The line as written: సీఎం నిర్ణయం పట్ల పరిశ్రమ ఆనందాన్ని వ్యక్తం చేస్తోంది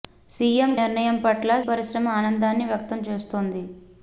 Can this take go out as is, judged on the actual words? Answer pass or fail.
pass